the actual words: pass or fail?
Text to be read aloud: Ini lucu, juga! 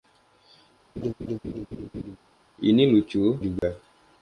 pass